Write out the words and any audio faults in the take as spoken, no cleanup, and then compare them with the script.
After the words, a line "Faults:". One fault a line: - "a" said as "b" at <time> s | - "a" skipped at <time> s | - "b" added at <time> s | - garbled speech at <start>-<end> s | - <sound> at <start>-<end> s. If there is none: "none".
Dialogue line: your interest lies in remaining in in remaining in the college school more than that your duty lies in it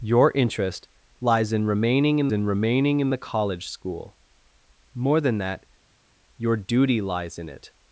your interest lies in remaining in in remaining in the college school more than that your duty lies in it
Faults:
none